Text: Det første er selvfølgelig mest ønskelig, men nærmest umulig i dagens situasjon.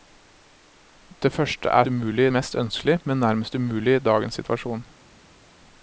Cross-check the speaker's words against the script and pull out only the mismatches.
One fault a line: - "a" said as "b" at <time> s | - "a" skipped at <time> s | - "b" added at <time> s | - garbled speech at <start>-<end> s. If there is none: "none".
- "selvfølgelig" said as "umulig" at 1.9 s